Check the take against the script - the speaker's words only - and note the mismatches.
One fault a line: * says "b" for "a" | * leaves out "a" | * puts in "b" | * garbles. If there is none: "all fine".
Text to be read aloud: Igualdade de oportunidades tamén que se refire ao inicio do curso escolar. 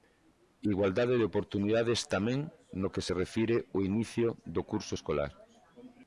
* puts in "no"